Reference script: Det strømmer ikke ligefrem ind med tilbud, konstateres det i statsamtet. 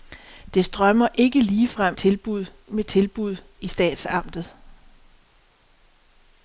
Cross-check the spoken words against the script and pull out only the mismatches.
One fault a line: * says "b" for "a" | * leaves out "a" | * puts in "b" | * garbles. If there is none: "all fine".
* says "tilbud" for "ind"
* leaves out "konstateres det"